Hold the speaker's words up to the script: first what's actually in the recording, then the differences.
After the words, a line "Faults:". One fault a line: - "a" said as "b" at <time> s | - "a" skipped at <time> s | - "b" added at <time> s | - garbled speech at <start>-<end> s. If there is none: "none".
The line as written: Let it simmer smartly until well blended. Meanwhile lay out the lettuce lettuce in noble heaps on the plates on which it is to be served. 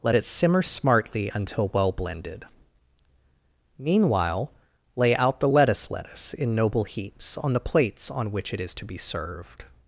Let it simmer smartly until well blended. Meanwhile lay out the lettuce lettuce in noble heaps on the plates on which it is to be served.
Faults:
none